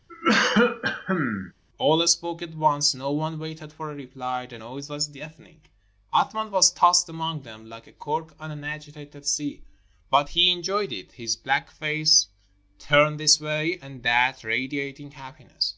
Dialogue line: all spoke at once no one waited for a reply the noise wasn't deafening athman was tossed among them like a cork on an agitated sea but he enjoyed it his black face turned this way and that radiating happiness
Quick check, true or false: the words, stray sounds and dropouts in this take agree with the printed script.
false